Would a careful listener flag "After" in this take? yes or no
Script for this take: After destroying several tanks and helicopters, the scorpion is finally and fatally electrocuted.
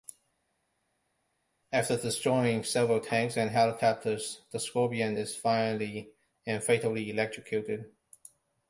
no